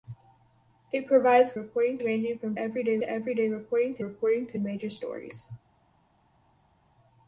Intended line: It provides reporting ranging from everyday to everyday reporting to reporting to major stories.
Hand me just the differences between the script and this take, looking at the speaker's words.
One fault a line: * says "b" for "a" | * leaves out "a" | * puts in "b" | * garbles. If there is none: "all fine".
all fine